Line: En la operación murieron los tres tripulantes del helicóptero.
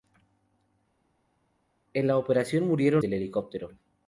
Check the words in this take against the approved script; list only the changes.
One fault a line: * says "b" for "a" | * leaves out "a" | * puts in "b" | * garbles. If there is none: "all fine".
* leaves out "los tres tripulantes"